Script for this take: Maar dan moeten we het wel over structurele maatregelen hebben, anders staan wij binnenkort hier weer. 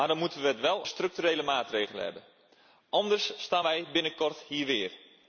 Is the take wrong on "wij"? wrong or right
right